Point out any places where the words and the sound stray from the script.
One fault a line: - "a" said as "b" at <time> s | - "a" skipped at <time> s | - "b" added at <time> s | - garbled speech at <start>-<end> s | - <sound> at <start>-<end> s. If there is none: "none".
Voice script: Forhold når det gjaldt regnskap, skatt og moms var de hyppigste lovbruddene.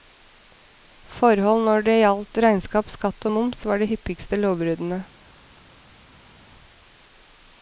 none